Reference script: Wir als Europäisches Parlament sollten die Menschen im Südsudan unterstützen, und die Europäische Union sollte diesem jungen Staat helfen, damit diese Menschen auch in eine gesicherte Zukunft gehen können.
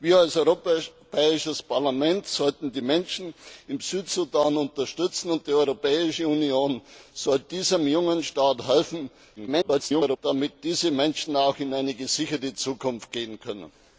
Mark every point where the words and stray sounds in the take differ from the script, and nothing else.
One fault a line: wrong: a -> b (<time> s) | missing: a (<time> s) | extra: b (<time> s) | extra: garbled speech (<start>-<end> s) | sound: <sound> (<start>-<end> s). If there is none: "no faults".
extra: garbled speech (9.4-10.2 s)